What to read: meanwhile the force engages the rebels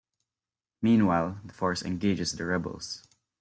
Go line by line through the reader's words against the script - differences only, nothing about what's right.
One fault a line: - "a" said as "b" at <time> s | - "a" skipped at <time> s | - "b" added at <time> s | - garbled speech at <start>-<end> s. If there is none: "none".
none